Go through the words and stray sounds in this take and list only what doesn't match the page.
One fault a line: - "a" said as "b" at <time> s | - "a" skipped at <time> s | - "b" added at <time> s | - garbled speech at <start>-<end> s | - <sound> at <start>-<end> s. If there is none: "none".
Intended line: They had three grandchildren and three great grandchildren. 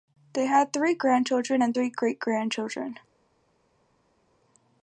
none